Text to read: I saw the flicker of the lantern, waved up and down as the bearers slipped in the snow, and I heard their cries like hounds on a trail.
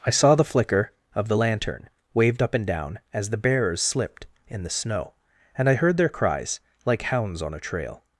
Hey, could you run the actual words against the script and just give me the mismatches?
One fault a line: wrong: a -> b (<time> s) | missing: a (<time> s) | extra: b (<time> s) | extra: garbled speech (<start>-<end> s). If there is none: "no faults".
no faults